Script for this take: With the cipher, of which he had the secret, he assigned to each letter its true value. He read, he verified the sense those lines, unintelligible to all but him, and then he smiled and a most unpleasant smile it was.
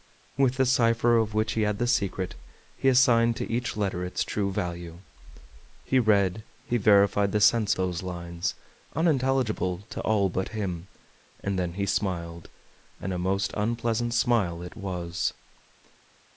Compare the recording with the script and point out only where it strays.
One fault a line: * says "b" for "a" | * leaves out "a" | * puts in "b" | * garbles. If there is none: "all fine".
all fine